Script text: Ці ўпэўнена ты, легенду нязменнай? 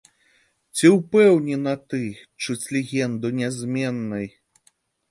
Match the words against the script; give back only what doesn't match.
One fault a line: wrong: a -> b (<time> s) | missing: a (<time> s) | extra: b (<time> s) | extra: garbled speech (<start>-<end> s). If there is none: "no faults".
extra: чуць (2.5 s)